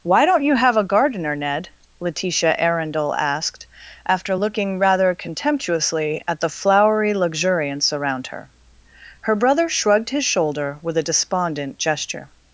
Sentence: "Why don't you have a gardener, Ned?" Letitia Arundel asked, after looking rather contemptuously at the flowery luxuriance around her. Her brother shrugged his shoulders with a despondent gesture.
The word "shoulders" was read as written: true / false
false